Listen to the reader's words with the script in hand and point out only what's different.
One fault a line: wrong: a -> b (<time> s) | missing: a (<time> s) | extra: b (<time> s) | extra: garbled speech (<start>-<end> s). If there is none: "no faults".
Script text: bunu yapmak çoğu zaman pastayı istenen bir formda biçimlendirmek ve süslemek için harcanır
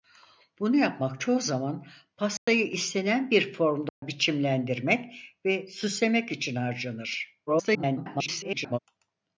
extra: garbled speech (7.5-8.8 s)